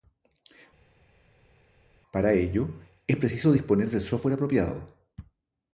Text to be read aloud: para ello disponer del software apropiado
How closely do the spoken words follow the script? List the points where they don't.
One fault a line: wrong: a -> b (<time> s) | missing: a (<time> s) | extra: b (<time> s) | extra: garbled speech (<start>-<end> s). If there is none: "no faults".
extra: es preciso (3.1 s)